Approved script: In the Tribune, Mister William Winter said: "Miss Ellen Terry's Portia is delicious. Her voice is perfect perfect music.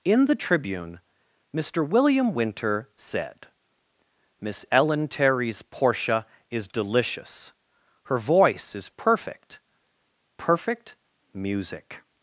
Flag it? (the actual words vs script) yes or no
no